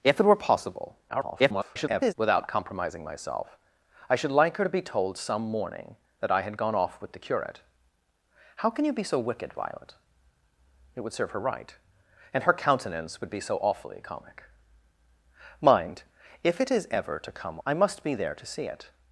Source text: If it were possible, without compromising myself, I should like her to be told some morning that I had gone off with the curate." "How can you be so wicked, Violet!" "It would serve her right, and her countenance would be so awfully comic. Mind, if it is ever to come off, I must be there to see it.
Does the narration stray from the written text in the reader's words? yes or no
yes